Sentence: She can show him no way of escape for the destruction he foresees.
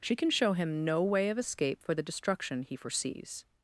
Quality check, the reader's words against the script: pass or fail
pass